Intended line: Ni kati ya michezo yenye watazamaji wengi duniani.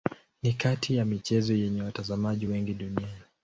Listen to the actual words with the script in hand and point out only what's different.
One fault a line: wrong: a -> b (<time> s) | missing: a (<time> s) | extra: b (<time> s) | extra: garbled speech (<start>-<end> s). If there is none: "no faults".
no faults